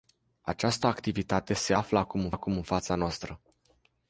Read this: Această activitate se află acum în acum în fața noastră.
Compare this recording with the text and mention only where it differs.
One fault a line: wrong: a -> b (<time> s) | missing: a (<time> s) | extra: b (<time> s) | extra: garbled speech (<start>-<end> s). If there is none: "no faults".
no faults